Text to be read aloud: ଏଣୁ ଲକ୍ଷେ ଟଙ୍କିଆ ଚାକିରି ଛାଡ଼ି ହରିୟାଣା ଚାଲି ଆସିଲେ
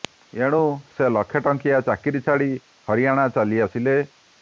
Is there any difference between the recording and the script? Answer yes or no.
yes